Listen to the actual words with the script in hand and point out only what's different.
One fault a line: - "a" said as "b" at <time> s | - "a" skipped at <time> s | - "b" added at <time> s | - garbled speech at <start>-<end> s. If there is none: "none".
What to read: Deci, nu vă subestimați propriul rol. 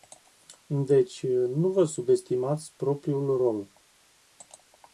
none